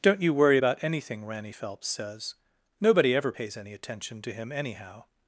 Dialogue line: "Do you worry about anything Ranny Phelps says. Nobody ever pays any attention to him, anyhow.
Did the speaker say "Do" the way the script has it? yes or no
no